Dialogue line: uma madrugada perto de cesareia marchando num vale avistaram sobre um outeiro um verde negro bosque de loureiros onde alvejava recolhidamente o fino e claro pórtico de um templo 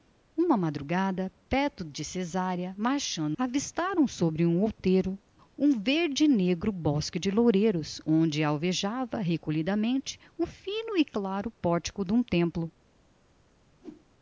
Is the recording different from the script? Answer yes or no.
yes